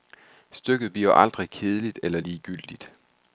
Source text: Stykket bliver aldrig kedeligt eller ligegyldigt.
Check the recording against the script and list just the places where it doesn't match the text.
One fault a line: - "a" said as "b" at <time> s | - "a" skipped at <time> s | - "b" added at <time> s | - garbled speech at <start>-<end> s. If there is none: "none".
none